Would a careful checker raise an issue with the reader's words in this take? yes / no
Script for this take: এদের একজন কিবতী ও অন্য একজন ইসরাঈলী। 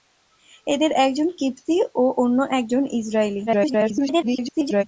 yes